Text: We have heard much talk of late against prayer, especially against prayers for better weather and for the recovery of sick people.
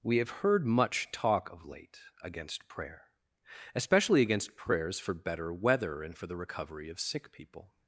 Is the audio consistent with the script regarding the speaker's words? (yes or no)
yes